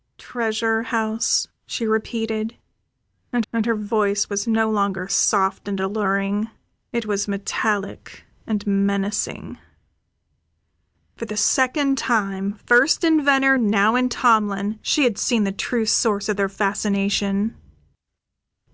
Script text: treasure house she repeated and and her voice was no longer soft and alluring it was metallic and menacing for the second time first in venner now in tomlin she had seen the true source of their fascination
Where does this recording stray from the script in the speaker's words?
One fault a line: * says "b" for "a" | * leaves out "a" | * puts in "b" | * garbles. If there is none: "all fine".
all fine